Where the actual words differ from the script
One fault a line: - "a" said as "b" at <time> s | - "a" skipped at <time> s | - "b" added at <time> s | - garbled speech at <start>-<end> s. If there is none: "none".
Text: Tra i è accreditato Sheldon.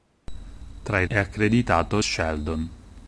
none